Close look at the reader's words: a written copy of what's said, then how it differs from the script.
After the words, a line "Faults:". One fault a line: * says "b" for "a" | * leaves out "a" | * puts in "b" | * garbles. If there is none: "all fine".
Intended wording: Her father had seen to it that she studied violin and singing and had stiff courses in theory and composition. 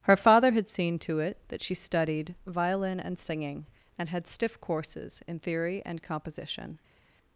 Her father had seen to it that she studied violin and singing and had stiff courses in theory and composition.
Faults:
all fine